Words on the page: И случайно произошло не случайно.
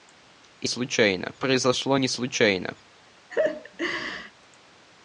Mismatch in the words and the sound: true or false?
true